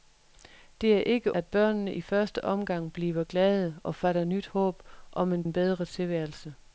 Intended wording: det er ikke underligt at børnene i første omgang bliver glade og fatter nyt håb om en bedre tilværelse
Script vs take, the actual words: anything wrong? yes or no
yes